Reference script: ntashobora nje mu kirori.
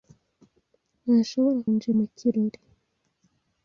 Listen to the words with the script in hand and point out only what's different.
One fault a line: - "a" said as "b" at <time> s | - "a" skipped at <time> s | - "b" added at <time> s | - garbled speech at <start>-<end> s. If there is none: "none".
none